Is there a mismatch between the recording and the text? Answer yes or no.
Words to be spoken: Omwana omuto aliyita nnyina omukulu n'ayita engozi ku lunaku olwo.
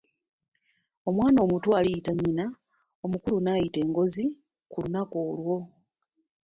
no